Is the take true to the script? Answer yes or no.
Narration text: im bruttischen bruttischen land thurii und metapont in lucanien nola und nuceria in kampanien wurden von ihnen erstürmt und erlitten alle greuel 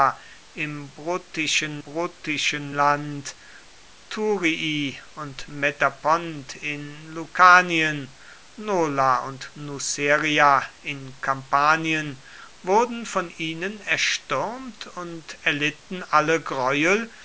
yes